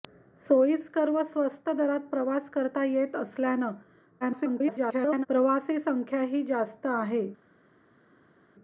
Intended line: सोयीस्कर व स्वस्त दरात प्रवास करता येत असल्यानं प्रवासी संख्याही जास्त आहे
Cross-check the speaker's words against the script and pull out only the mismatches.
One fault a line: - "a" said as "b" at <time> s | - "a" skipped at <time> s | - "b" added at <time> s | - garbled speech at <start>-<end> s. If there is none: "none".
- garbled speech at 4.2-5.3 s